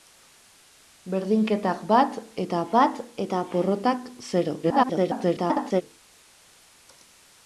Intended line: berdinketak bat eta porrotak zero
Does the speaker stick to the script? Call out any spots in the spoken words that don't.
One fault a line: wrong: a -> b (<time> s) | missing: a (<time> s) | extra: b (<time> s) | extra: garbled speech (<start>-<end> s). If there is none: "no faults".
extra: bat eta (2.7 s)
extra: garbled speech (4.6-5.8 s)